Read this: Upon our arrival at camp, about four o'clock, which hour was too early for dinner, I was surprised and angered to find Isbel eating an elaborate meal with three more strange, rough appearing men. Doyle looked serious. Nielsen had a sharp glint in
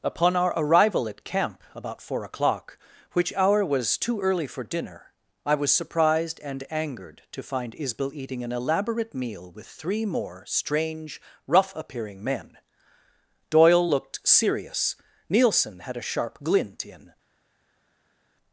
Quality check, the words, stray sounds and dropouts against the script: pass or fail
pass